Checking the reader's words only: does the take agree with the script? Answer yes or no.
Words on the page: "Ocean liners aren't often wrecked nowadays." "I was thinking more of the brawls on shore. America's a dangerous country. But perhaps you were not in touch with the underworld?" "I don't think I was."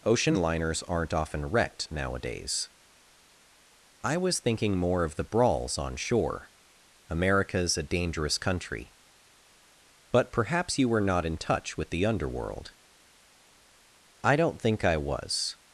yes